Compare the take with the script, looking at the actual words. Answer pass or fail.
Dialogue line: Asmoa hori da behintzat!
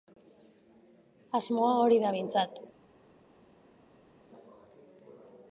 pass